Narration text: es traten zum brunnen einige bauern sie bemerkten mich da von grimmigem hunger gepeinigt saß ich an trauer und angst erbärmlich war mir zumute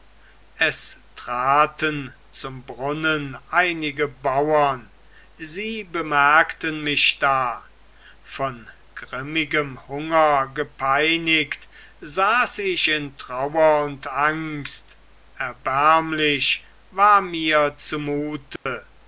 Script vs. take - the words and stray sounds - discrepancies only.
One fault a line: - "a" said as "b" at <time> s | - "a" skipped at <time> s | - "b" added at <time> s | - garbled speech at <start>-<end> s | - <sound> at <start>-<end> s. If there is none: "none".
- "an" said as "in" at 12.9 s
- dropout at 18.6-18.7 s